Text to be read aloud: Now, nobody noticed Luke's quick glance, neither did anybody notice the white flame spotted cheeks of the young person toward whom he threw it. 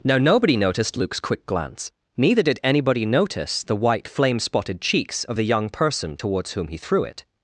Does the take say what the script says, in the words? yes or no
no